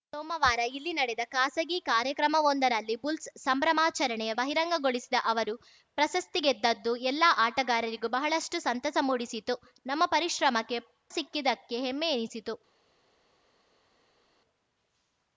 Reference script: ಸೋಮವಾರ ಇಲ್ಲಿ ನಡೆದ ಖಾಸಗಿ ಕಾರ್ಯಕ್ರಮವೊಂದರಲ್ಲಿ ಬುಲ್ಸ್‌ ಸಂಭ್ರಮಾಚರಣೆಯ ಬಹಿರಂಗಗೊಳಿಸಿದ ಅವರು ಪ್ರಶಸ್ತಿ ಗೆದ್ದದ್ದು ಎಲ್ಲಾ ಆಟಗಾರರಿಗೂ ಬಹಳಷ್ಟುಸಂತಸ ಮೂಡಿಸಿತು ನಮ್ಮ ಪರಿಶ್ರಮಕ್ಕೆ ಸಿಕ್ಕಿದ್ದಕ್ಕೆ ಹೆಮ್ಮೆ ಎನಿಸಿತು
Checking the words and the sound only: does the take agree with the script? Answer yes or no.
yes